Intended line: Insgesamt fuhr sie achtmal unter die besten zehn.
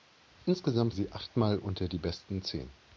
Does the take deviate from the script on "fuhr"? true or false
true